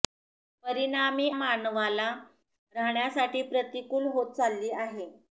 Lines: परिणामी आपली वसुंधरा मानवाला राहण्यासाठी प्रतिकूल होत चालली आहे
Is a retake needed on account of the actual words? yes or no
yes